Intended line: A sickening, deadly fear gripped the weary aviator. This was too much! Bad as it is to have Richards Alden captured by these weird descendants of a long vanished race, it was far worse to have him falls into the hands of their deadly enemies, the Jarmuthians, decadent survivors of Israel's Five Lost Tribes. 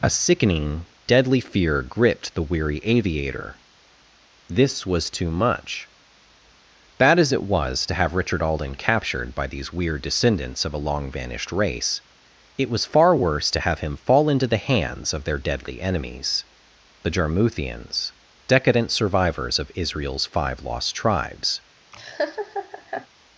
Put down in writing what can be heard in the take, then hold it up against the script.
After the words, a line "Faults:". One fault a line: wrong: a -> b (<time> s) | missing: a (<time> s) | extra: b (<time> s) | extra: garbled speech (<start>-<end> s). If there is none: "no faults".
A sickening, deadly fear gripped the weary aviator. This was too much! Bad as it was to have Richard Alden captured by these weird descendants of a long vanished race, it was far worse to have him fall into the hands of their deadly enemies, the Jarmuthians, decadent survivors of Israel's Five Lost Tribes.
Faults:
wrong: is -> was (7.4 s)
wrong: Richards -> Richard (8.2 s)
wrong: falls -> fall (13.9 s)